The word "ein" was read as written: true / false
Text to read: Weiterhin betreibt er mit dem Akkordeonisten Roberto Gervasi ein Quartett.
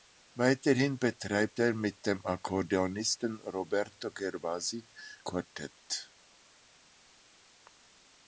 false